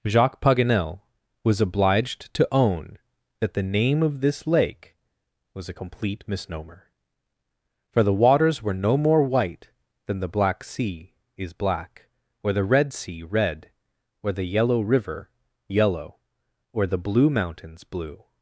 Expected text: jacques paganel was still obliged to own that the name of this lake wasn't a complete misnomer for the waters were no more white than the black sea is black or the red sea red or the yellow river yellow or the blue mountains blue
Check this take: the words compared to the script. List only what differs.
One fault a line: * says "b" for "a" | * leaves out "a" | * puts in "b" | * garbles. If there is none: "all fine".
* leaves out "still"
* says "was" for "wasn't"